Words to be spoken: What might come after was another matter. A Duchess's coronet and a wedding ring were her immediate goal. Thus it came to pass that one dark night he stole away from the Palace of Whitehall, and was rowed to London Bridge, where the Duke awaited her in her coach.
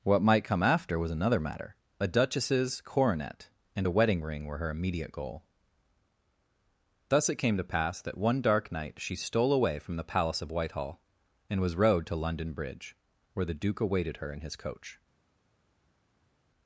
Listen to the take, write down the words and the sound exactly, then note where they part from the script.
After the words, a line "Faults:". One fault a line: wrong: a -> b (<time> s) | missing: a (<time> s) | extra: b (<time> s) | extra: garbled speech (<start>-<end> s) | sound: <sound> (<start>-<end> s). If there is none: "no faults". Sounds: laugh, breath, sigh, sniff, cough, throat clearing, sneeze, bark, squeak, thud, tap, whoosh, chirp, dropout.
What might come after was another matter. A Duchess's coronet and a wedding ring were her immediate goal. Thus it came to pass that one dark night she stole away from the Palace of Whitehall, and was rowed to London Bridge, where the Duke awaited her in his coach.
Faults:
wrong: he -> she (9.0 s)
wrong: her -> his (14.4 s)